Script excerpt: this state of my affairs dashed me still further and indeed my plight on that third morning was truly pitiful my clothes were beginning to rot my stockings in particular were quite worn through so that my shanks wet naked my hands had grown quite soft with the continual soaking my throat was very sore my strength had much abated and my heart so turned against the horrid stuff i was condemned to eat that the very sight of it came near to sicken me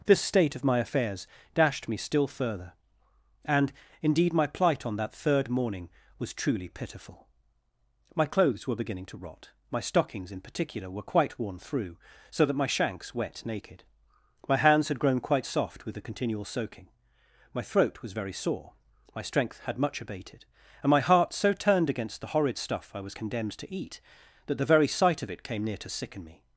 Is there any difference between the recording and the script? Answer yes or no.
no